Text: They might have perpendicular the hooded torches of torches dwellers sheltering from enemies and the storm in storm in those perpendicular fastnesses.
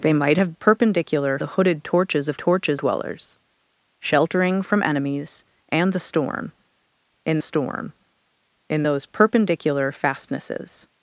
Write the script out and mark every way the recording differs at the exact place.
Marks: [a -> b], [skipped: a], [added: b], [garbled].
They might have perpendicular the hooded torches of torches dwellers sheltering from enemies and the storm in storm in those perpendicular fastnesses.